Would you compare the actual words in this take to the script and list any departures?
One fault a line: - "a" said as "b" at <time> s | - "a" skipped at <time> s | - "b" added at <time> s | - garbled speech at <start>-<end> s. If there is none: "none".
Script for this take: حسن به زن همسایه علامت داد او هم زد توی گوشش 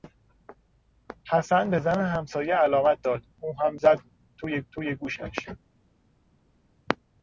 - "توی" added at 4.7 s